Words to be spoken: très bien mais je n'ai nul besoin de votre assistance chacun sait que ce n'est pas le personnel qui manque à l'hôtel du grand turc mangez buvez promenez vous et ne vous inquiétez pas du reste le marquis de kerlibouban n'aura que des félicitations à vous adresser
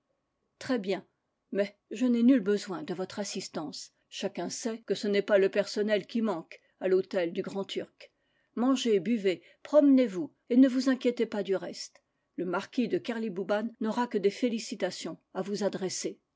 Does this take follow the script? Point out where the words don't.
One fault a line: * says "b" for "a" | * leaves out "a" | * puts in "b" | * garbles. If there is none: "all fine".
all fine